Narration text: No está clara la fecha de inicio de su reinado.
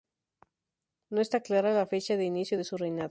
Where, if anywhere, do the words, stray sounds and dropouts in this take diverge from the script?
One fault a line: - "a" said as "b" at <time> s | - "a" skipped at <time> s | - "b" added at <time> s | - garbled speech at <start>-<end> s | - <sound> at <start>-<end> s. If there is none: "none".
none